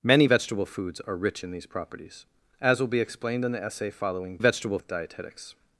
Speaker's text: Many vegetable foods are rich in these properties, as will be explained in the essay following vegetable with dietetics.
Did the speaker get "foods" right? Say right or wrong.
right